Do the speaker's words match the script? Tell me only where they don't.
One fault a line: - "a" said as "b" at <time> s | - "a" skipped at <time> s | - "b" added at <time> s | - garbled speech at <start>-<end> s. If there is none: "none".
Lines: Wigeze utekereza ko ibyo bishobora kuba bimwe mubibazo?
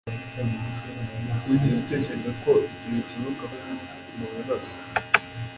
- "kuba" skipped at 3.5 s